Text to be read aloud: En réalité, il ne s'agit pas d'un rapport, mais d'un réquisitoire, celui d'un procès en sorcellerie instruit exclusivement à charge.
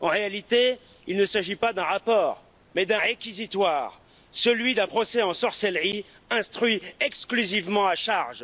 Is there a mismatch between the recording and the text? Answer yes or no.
no